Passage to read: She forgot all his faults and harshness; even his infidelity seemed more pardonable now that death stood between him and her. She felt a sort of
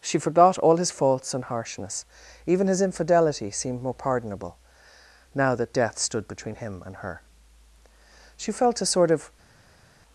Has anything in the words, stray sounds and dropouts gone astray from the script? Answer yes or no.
no